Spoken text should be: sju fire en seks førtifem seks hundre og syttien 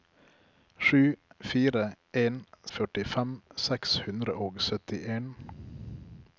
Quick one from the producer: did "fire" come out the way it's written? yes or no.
yes